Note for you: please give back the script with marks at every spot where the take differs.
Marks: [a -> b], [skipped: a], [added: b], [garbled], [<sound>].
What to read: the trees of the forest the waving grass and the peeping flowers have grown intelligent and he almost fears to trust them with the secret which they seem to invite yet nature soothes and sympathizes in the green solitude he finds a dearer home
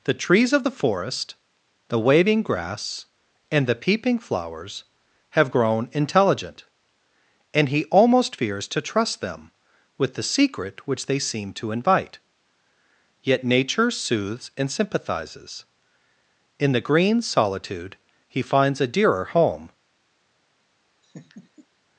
the trees of the forest the waving grass and the peeping flowers have grown intelligent and he almost fears to trust them with the secret which they seem to invite yet nature soothes and sympathizes in the green solitude he finds a dearer home [laugh]